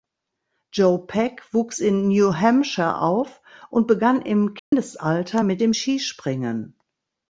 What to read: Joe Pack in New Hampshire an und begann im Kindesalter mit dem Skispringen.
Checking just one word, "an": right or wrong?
wrong